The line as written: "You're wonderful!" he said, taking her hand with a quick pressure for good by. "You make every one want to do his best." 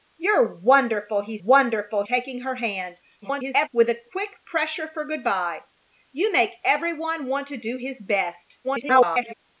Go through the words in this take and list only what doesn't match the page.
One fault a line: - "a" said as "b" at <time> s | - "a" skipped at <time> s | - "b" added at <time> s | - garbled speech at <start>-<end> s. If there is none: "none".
- "said" said as "wonderful" at 1.4 s
- garbled speech at 3.2-3.7 s
- garbled speech at 8.6-9.3 s